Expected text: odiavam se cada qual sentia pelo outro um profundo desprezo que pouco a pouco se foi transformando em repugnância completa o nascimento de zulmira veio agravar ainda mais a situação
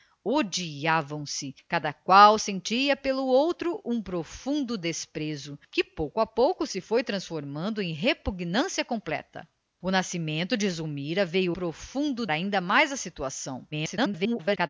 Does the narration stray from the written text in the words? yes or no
yes